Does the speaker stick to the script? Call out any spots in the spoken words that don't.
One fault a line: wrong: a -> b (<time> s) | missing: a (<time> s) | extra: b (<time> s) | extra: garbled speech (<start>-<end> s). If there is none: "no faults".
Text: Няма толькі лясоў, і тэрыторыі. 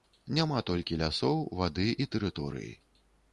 extra: вады (1.6 s)